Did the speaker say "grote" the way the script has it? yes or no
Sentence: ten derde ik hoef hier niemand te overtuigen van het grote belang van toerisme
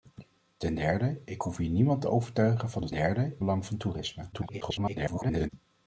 no